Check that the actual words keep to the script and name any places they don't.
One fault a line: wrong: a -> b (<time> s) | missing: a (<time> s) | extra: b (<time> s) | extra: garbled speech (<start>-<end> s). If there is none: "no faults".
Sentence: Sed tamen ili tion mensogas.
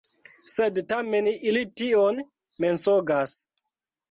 no faults